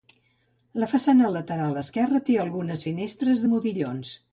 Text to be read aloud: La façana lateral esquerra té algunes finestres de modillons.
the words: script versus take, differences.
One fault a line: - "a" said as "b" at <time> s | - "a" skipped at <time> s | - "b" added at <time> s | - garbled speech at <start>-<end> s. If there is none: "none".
none